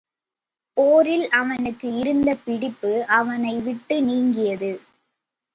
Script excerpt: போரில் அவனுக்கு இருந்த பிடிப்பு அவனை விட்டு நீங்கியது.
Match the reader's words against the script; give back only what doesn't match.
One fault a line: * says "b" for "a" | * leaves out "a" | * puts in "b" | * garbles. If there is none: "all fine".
all fine